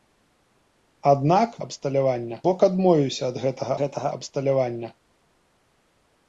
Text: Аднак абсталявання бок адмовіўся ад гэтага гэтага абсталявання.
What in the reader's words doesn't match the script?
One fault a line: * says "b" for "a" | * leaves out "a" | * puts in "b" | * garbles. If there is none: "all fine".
all fine